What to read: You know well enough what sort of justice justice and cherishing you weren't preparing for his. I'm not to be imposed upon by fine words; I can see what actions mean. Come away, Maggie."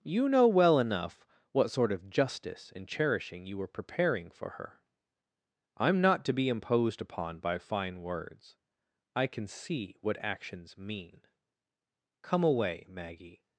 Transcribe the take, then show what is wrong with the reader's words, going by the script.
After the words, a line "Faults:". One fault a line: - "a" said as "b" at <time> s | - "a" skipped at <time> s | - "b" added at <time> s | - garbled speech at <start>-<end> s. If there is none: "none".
You know well enough what sort of justice and cherishing you were preparing for her. I'm not to be imposed upon by fine words; I can see what actions mean. Come away, Maggie."
Faults:
- "justice" skipped at 2.7 s
- "weren't" said as "were" at 3.6 s
- "his" said as "her" at 4.5 s